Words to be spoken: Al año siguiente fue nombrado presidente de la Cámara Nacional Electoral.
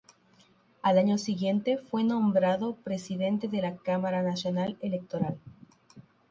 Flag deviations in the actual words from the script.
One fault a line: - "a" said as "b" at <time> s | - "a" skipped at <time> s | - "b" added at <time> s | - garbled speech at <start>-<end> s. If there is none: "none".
none